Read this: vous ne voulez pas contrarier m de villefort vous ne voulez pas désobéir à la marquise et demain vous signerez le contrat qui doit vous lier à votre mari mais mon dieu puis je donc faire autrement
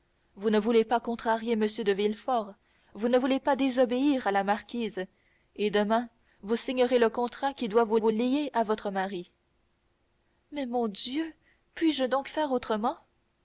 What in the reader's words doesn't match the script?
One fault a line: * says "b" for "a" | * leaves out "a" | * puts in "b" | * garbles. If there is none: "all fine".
* puts in "vous"